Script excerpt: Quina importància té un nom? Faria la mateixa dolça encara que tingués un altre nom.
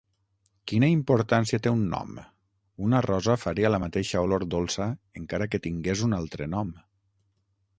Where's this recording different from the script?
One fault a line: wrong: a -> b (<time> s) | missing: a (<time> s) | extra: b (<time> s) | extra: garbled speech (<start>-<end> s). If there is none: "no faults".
extra: Una rosa (2.9 s)
extra: olor (4.3 s)